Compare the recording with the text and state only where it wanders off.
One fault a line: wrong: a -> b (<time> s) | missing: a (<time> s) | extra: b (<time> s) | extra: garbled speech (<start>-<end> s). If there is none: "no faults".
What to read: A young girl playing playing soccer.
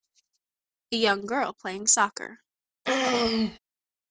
missing: playing (1.9 s)